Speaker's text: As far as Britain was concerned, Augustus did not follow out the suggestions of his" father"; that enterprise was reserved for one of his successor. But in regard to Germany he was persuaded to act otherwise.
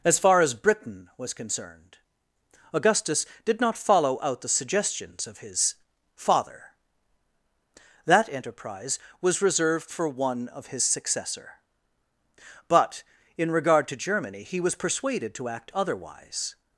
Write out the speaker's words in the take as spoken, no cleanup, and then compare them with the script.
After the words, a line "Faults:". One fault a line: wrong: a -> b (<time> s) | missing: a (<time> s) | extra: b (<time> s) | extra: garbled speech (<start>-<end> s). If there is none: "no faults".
As far as Britain was concerned, Augustus did not follow out the suggestions of his" father"; that enterprise was reserved for one of his successor. But in regard to Germany he was persuaded to act otherwise.
Faults:
no faults